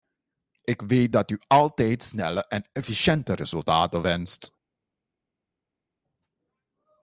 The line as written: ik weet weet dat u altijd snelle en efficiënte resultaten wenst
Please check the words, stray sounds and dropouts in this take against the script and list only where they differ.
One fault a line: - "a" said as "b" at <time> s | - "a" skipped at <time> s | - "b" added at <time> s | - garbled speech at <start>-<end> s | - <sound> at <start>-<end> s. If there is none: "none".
- "weet" skipped at 1.1 s